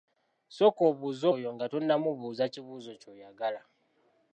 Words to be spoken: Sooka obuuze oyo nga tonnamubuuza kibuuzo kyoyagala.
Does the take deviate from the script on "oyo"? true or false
false